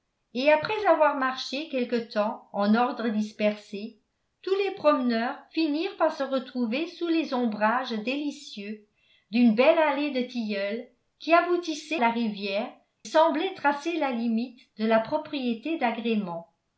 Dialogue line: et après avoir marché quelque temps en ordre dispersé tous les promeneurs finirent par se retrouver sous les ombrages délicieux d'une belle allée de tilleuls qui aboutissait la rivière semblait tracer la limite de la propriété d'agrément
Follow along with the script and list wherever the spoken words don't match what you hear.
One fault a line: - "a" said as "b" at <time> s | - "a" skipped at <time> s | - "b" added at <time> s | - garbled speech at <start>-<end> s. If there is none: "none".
none